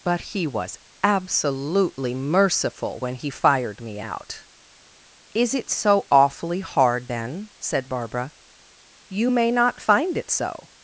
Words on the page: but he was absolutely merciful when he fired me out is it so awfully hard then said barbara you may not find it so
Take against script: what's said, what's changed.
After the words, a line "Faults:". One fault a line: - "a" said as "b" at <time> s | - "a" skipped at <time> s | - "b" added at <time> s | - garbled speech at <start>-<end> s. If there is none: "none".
but he was absolutely merciful when he fired me out is it so awfully hard then said barbara you may not find it so
Faults:
none